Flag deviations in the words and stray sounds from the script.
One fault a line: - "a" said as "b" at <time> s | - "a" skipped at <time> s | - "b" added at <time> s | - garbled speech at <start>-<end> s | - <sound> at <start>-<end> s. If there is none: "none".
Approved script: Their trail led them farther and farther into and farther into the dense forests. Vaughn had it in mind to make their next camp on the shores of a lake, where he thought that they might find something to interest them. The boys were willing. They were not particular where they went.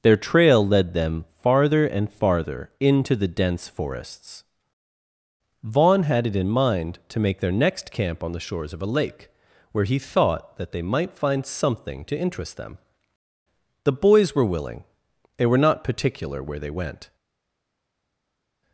- "and farther into" skipped at 3.1 s